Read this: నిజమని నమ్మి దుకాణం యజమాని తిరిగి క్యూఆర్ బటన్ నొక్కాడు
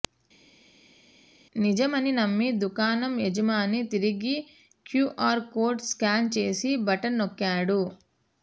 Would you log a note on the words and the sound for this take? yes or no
yes